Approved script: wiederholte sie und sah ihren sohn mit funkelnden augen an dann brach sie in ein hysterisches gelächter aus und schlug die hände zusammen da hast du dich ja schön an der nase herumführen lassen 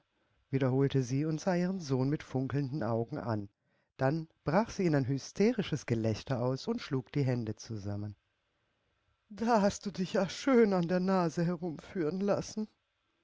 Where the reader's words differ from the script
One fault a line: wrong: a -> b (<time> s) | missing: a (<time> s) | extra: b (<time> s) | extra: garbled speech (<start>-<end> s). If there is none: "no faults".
no faults